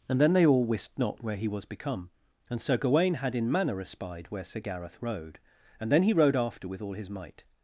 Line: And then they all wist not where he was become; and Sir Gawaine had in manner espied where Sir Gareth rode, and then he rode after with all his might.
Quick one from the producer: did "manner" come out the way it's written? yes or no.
yes